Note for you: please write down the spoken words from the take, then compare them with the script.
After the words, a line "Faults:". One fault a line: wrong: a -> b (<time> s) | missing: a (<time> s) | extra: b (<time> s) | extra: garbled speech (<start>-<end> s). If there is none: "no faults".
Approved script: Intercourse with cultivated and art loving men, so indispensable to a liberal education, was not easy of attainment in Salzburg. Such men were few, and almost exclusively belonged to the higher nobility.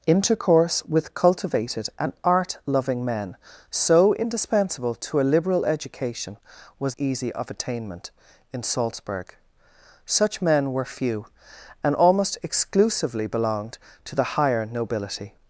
Intercourse with cultivated and art loving men, so indispensable to a liberal education, was easy of attainment in Salzburg. Such men were few, and almost exclusively belonged to the higher nobility.
Faults:
missing: not (7.0 s)